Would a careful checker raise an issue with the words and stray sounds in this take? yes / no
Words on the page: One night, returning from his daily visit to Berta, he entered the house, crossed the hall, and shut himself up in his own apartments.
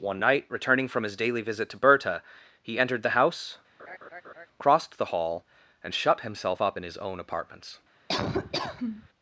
yes